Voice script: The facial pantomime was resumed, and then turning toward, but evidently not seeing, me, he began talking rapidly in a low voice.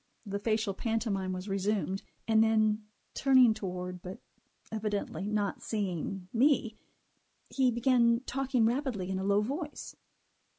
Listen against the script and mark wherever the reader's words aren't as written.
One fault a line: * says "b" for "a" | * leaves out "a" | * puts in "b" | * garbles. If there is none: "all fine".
all fine